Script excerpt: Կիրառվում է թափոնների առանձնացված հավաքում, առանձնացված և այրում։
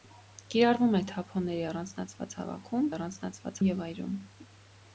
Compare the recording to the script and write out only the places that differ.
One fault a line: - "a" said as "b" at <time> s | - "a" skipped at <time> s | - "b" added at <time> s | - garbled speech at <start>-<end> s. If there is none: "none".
none